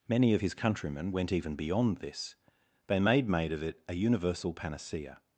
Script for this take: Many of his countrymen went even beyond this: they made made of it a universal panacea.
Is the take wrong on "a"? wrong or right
right